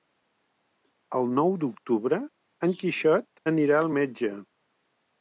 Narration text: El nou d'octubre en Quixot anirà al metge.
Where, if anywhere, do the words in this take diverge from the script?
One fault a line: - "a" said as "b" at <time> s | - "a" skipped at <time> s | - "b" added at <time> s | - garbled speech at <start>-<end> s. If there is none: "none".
none